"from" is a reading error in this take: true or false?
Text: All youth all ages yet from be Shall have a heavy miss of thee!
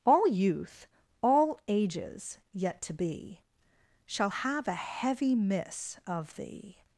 true